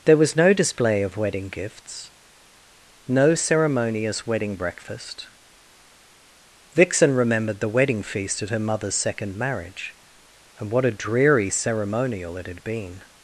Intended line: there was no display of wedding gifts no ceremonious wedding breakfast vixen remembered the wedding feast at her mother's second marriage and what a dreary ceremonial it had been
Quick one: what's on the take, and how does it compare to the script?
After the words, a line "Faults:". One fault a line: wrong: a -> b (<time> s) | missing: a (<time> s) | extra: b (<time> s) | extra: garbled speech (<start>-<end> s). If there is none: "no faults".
there was no display of wedding gifts no ceremonious wedding breakfast vixen remembered the wedding feast at her mother's second marriage and what a dreary ceremonial it had been
Faults:
no faults